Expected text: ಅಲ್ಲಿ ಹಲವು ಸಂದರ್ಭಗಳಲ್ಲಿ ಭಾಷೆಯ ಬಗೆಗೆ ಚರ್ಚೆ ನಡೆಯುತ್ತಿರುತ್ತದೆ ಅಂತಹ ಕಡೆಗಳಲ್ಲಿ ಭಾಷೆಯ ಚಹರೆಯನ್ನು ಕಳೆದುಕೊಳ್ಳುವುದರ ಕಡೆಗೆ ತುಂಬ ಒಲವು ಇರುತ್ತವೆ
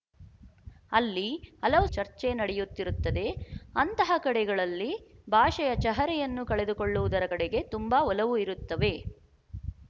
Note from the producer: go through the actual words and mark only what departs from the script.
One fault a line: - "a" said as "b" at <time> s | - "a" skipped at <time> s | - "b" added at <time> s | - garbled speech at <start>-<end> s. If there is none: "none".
- "ಸಂದರ್ಭಗಳಲ್ಲಿ ಭಾಷೆಯ ಬಗೆಗೆ" skipped at 1.9 s